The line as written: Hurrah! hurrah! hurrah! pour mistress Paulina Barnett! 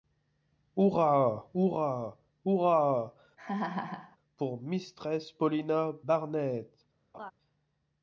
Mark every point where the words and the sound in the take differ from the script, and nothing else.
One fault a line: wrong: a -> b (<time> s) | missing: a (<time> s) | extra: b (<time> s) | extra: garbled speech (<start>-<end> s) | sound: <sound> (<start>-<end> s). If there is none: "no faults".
sound: laugh (3.4-4.2 s)
sound: laugh (7.1-7.3 s)